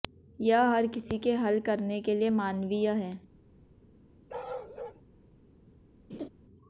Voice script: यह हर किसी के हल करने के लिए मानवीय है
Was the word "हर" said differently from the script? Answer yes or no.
no